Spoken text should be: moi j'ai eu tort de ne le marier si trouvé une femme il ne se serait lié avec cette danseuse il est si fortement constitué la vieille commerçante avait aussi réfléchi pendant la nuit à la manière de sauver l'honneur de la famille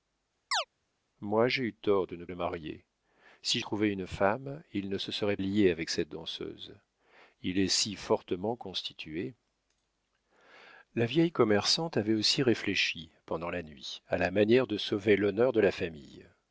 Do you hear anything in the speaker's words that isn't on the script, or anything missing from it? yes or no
no